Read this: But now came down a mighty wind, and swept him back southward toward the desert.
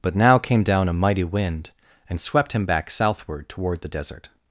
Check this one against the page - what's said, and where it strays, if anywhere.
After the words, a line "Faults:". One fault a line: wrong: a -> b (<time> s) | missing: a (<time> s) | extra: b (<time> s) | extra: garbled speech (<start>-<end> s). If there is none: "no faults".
But now came down a mighty wind, and swept him back southward toward the desert.
Faults:
no faults